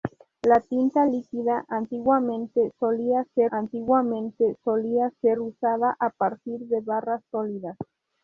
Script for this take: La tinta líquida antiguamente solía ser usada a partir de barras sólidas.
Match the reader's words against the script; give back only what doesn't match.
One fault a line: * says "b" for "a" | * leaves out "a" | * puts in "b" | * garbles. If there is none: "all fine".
* puts in "antiguamente solía ser"